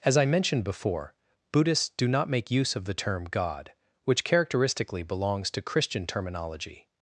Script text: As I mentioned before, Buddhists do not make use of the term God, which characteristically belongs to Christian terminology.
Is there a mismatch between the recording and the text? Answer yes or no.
no